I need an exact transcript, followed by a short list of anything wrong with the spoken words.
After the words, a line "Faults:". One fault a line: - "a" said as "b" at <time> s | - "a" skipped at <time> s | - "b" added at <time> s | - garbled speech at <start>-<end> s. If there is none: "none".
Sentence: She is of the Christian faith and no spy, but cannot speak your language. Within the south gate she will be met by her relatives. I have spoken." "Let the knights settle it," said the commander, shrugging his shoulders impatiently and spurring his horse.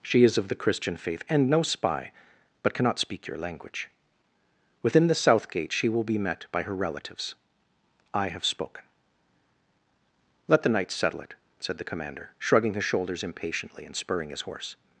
She is of the Christian faith and no spy, but cannot speak your language. Within the south gate she will be met by her relatives. I have spoken." "Let the knights settle it," said the commander, shrugging his shoulders impatiently and spurring his horse.
Faults:
none